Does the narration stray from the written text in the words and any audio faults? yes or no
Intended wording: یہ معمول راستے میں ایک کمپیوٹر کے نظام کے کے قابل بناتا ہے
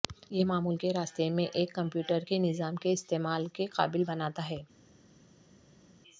yes